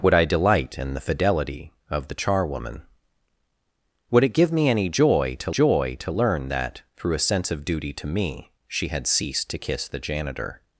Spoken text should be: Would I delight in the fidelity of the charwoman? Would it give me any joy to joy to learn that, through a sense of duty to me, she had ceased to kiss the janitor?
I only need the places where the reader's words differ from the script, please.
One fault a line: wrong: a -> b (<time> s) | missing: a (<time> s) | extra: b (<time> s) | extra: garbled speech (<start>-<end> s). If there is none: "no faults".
no faults